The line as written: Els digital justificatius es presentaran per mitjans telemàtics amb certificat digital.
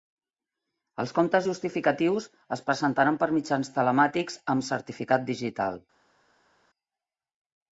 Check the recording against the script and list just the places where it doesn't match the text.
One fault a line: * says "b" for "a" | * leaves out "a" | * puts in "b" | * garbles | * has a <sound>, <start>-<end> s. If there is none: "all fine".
* says "comptes" for "digital"